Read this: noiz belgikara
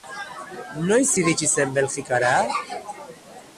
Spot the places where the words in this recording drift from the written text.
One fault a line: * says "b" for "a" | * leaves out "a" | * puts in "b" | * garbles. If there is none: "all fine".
* puts in "iritsi zen"